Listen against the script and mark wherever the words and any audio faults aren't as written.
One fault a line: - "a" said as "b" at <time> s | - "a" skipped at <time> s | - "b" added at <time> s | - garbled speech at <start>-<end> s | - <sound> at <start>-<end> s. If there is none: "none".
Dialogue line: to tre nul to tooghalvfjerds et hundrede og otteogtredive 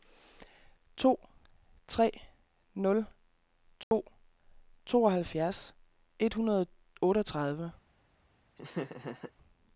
- dropout at 3.8-3.9 s
- laugh at 8.6-9.3 s